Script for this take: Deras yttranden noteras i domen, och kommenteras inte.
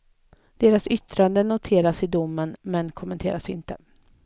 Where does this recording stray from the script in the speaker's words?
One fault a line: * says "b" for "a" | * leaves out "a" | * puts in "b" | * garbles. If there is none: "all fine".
* says "men" for "och"